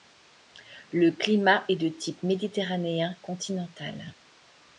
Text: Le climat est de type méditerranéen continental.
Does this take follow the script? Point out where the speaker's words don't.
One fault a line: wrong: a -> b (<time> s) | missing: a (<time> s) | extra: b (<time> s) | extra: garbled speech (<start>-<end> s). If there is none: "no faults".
no faults